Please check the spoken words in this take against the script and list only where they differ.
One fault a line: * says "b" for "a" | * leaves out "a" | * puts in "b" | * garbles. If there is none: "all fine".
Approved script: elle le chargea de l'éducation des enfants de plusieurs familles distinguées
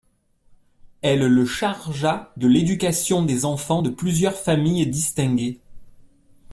all fine